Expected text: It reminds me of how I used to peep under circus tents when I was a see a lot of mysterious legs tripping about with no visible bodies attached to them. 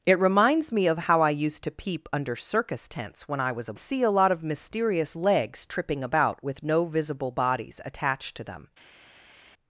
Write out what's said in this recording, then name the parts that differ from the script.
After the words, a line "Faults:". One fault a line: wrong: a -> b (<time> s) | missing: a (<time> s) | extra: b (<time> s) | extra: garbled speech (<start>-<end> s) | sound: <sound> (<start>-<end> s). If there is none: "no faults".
It reminds me of how I used to peep under circus tents when I was a see a lot of mysterious legs tripping about with no visible bodies attached to them.
Faults:
no faults